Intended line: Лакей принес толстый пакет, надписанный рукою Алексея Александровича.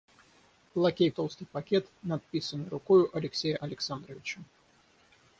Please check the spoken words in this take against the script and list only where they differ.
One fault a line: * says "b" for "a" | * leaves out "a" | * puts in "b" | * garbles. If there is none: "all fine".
* leaves out "принес"